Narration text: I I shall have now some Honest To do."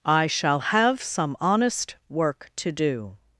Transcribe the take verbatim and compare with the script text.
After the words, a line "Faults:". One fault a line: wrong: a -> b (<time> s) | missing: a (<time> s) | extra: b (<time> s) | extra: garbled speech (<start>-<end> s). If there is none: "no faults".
I shall have some Honest Work to do."
Faults:
missing: I (0.3 s)
missing: now (1.0 s)
extra: Work (2.1 s)